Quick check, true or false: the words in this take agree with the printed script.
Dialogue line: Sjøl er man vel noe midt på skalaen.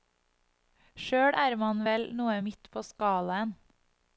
true